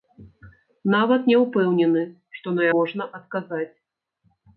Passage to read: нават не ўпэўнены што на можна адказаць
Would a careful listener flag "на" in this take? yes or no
no